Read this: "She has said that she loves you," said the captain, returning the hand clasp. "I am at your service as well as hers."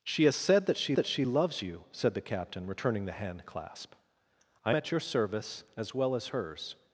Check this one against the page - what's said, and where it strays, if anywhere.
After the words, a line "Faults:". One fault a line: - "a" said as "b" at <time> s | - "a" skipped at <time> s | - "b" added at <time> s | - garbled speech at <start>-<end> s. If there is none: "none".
"She has said that she that she loves you," said the captain, returning the hand clasp. "I at your service as well as hers."
Faults:
- "that she" added at 0.9 s
- "am" skipped at 4.7 s